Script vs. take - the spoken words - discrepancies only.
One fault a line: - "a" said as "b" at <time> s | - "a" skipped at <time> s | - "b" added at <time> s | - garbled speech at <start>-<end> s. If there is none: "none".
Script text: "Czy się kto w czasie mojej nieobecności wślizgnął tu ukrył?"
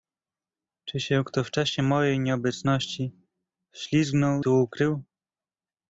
none